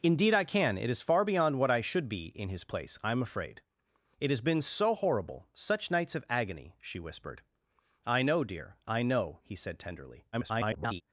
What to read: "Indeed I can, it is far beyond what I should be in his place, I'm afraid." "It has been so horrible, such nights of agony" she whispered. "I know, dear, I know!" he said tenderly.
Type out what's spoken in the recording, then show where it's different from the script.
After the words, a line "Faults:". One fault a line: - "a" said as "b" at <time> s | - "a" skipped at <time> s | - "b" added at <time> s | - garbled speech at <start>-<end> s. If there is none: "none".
"Indeed I can, it is far beyond what I should be in his place, I'm afraid." "It has been so horrible, such nights of agony" she whispered. "I know, dear, I know!" he said tenderly. [garbled]
Faults:
- garbled speech at 10.3-11.0 s